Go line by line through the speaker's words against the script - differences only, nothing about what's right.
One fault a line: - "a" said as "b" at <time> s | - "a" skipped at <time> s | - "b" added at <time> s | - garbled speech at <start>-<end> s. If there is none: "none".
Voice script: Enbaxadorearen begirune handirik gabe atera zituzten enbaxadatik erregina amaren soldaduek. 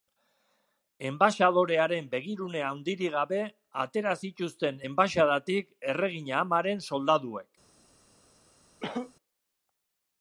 none